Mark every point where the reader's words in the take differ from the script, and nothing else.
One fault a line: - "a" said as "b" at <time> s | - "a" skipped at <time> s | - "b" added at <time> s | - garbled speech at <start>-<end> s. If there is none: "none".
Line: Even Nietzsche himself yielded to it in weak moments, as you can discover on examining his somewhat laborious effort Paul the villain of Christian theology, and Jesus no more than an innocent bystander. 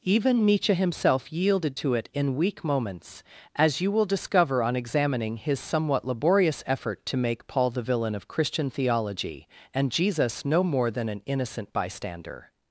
- "can" said as "will" at 3.9 s
- "to make" added at 7.0 s